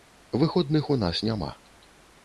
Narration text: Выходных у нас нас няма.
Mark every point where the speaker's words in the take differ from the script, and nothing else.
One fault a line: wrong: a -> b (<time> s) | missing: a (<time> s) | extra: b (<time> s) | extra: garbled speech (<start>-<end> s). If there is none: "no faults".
missing: нас (1.2 s)